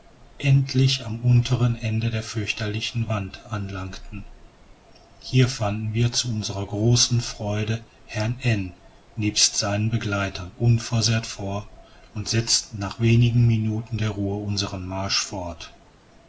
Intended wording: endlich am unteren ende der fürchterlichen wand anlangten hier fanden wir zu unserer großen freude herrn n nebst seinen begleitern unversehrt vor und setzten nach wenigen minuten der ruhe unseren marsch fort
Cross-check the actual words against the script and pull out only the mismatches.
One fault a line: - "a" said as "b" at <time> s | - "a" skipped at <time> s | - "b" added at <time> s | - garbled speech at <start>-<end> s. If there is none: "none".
none